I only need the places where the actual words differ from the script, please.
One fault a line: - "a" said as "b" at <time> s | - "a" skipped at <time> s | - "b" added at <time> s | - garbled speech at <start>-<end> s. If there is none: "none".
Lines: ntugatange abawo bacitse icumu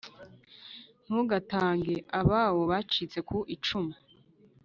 - "ku" added at 3.3 s